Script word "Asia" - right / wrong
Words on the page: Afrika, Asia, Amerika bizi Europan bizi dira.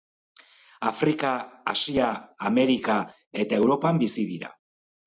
right